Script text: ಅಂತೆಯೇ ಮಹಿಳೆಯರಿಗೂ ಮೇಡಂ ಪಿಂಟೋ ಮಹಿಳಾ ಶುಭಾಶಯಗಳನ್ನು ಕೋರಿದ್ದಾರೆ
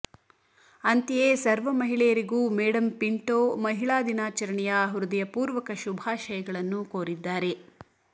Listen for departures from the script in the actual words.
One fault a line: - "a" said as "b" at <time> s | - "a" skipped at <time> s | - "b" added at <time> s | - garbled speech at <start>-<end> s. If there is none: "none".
- "ಸರ್ವ" added at 1.4 s
- "ದಿನಾಚರಣೆಯ ಹೃದಯಪೂರ್ವಕ" added at 4.0 s